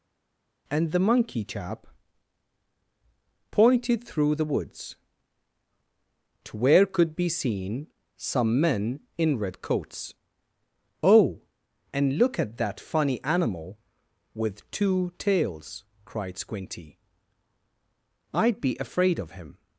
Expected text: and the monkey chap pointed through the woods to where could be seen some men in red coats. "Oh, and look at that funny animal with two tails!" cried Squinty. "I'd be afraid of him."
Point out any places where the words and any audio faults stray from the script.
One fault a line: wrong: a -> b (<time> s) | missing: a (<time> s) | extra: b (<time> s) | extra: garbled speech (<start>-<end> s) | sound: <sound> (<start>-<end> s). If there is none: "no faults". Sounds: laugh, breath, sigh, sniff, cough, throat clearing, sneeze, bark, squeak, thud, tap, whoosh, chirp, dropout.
no faults